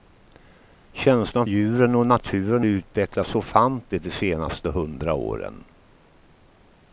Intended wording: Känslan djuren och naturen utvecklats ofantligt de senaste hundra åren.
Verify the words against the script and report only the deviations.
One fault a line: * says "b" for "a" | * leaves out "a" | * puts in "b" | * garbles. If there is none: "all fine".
all fine